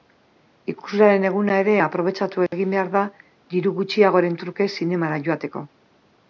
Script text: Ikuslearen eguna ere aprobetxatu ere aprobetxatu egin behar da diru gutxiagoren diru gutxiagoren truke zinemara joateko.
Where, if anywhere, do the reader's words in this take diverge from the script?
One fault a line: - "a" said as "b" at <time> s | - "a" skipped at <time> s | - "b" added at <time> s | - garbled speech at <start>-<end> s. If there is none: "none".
- "ere aprobetxatu" skipped at 2.5 s
- "diru gutxiagoren" skipped at 4.4 s